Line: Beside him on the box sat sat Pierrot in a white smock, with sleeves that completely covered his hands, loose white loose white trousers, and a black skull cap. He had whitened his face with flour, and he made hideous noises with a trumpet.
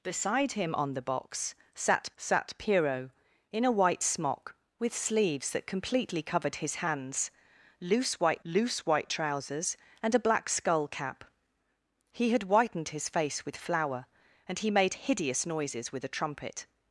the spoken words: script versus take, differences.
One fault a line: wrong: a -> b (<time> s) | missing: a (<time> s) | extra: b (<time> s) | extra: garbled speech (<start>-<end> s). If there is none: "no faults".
no faults